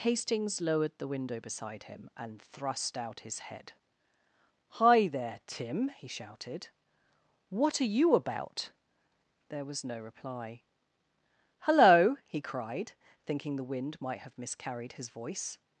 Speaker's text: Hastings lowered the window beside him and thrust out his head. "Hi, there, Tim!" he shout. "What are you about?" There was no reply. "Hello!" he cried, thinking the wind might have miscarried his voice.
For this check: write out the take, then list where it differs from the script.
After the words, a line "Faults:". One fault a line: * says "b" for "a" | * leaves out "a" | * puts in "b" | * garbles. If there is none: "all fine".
Hastings lowered the window beside him and thrust out his head. "Hi, there, Tim!" he shouted. "What are you about?" There was no reply. "Hello!" he cried, thinking the wind might have miscarried his voice.
Faults:
* says "shouted" for "shout"